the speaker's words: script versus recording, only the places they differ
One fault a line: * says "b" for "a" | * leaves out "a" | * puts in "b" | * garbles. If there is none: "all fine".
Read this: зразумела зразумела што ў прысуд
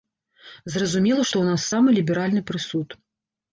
* leaves out "зразумела"
* puts in "нас самы ліберальны"